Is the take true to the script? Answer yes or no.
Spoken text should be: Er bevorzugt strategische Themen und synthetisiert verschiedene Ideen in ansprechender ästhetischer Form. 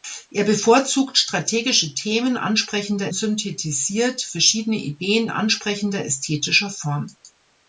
no